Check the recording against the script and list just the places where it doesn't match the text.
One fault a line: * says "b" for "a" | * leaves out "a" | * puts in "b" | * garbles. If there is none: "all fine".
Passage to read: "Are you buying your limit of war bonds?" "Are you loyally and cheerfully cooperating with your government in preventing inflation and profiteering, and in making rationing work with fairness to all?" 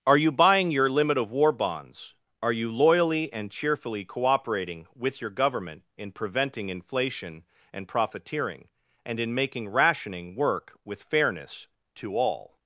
all fine